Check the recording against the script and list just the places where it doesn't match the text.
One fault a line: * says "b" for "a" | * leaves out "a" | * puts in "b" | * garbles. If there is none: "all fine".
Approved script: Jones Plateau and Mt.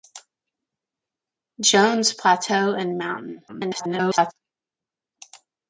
* garbles